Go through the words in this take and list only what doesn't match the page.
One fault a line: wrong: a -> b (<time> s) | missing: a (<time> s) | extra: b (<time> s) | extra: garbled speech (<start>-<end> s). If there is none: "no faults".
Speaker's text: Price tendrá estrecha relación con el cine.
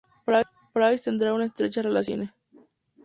extra: una (1.3 s)